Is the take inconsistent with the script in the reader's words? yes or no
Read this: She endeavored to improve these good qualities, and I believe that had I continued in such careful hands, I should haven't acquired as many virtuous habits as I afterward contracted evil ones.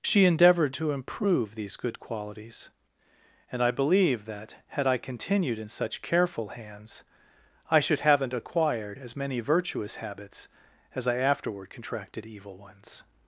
no